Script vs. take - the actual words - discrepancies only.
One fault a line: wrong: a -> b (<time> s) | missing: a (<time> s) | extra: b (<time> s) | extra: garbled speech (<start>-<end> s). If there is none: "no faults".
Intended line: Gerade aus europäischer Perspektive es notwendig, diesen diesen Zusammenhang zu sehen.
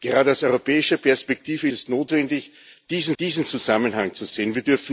no faults